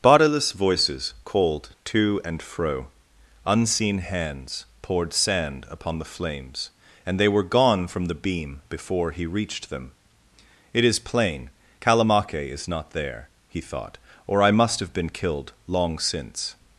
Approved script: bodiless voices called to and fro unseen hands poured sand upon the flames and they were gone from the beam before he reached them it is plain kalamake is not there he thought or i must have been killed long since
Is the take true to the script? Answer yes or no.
yes